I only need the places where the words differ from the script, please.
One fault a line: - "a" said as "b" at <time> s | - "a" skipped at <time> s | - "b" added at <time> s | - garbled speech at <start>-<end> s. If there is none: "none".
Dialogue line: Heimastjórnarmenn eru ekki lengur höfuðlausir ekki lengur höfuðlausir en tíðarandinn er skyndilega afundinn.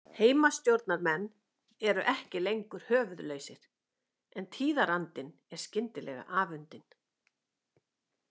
- "ekki lengur höfuðlausir" skipped at 3.7 s